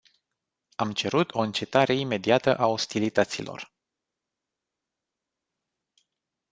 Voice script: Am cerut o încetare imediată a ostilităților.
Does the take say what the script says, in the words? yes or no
yes